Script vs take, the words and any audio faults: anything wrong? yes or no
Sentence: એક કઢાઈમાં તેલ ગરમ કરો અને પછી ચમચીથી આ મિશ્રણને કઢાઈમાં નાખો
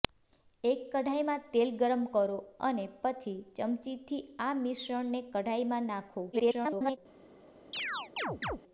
yes